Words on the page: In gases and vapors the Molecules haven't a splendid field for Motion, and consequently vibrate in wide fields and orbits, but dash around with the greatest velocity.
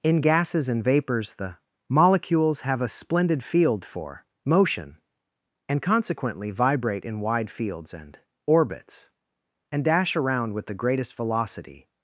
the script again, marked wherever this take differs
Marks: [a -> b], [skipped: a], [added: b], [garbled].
In gases and vapors the Molecules [haven't -> have] a splendid field for Motion, and consequently vibrate in wide fields and orbits, [but -> and] dash around with the greatest velocity.